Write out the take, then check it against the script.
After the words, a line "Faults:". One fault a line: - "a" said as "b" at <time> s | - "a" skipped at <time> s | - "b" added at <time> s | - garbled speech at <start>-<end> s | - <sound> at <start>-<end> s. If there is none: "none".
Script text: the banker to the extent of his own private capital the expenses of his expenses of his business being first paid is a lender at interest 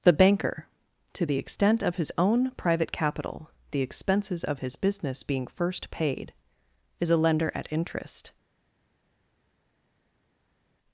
the banker to the extent of his own private capital the expenses of his business being first paid is a lender at interest
Faults:
- "expenses of his" skipped at 4.8 s